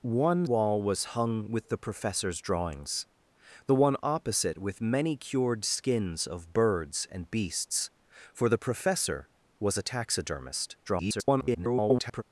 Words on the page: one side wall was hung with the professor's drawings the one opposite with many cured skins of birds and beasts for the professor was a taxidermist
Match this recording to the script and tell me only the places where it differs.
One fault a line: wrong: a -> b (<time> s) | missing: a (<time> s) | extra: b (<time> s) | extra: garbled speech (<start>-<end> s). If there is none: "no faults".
missing: side (0.5 s)
extra: garbled speech (10.8-12.2 s)